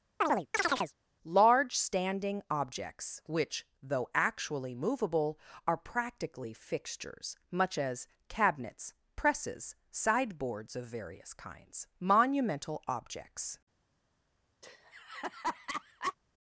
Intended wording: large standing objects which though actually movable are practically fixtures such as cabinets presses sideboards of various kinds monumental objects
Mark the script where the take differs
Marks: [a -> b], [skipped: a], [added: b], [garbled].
large standing objects which though actually movable are practically fixtures [such -> much] as cabinets presses sideboards of various kinds monumental objects